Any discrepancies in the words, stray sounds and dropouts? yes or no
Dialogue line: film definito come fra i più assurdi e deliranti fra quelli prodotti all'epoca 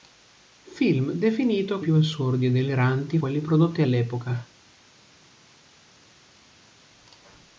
yes